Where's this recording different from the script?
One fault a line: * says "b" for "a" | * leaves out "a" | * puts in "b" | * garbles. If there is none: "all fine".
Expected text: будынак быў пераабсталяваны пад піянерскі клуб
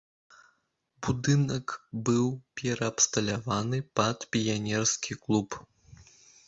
all fine